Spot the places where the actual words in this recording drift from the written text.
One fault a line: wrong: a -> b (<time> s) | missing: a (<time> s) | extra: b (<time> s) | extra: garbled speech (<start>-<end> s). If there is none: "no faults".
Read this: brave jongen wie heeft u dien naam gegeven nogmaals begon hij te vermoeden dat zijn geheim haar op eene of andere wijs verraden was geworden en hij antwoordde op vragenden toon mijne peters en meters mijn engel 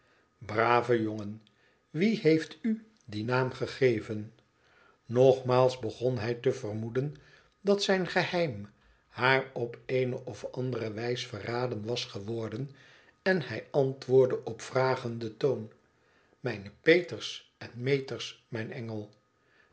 no faults